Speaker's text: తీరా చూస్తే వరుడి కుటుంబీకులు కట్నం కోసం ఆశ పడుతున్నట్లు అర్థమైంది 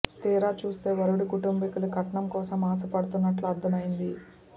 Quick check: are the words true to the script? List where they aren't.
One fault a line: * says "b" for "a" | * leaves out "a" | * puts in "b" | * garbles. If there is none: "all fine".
all fine